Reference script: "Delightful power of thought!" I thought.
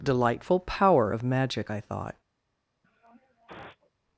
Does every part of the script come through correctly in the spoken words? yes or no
no